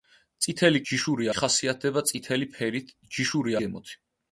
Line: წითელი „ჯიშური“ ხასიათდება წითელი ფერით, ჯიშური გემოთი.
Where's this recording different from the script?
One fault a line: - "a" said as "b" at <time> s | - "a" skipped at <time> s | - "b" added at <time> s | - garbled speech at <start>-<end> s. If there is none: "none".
none